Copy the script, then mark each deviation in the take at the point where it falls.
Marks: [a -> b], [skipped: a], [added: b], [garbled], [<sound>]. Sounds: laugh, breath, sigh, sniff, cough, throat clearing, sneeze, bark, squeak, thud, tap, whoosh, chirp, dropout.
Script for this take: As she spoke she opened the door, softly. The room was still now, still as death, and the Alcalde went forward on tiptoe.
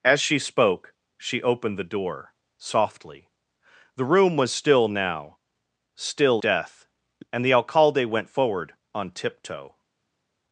As she spoke she opened the door, softly. The room was still now, still [skipped: as] death, and the Alcalde went forward on tiptoe.